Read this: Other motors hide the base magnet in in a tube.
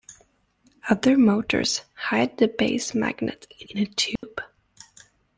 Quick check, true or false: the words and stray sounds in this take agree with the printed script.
false